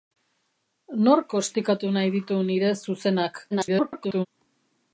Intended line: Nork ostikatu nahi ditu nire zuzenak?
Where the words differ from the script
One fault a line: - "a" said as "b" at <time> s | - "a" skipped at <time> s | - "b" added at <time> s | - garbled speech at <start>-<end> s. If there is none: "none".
- garbled speech at 3.5-4.3 s